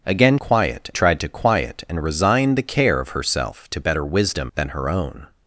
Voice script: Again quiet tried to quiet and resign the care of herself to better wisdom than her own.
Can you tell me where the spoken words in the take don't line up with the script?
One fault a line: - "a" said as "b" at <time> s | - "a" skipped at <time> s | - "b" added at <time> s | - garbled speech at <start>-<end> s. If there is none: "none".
none